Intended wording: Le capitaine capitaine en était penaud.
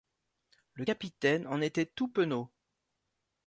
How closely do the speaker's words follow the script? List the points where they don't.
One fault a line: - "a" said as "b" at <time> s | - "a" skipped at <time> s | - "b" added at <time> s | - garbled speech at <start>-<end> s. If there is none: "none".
- "capitaine" skipped at 1.5 s
- "tout" added at 1.8 s